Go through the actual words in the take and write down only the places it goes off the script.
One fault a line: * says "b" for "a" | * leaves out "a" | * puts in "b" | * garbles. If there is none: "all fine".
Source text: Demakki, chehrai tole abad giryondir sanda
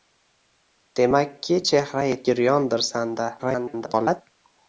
* leaves out "tole abad"
* garbles